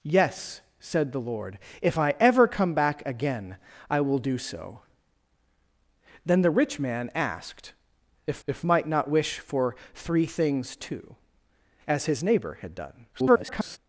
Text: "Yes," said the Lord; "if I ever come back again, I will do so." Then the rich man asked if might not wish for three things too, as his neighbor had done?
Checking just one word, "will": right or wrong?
right